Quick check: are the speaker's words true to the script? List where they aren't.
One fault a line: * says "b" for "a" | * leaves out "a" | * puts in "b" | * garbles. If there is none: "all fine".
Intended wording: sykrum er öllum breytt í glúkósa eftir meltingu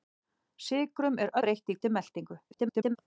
* leaves out "öllum"
* leaves out "glúkósa"
* garbles